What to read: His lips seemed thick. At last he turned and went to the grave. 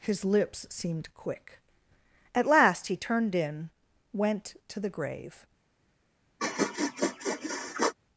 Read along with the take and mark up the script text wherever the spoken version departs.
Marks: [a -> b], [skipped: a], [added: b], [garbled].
His lips seemed [thick. -> quick] At last he turned [and -> in] went to the grave.